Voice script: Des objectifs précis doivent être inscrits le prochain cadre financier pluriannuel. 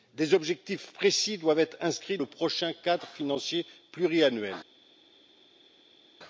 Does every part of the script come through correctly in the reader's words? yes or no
yes